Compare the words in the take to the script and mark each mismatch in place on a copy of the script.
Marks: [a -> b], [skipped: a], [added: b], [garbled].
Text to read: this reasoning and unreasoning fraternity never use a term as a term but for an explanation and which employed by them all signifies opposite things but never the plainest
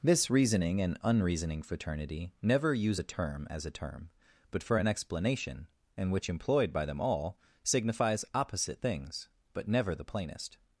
this reasoning and unreasoning fraternity never use a term as a term but for an explanation and which employed by them all signifies opposite things but never the plainest